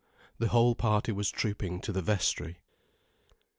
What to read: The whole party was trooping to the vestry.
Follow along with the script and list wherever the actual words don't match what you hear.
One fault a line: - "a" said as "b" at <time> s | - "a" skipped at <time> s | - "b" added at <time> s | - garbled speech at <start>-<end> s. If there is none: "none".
none